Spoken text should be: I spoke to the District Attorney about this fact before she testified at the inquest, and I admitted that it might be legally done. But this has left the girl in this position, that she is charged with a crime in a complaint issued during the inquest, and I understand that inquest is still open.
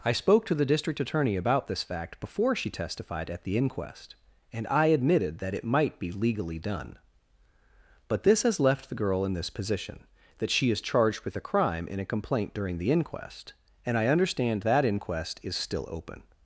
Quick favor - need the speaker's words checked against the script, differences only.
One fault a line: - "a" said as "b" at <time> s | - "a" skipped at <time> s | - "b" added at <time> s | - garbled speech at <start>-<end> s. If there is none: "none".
- "issued" skipped at 12.6 s